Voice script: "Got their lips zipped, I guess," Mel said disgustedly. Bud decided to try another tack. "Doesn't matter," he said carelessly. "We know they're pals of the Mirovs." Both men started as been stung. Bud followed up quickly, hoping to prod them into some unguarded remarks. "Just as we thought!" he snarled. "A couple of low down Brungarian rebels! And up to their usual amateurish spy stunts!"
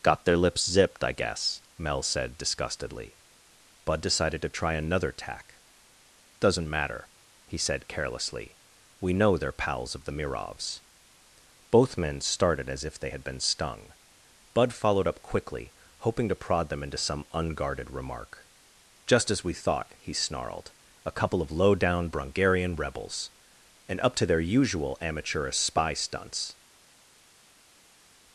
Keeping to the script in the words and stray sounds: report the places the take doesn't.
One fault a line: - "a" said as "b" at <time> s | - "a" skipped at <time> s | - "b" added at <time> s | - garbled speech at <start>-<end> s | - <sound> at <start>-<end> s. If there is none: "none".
- "if they had" added at 12.8 s
- "remarks" said as "remark" at 17.9 s